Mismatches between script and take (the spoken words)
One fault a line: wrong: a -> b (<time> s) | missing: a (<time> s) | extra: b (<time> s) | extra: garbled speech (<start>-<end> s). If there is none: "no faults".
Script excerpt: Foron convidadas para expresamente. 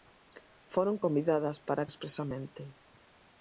no faults